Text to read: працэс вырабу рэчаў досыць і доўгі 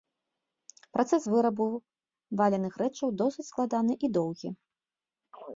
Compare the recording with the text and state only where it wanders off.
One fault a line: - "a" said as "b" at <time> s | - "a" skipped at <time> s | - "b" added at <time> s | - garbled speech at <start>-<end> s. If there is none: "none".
- "валяных" added at 2.4 s
- "складаны" added at 3.5 s